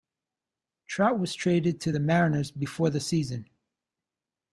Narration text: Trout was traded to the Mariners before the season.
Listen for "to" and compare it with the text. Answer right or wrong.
right